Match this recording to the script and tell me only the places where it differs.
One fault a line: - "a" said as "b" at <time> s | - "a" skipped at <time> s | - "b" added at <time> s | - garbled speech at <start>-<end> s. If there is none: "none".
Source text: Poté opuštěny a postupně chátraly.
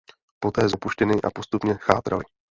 none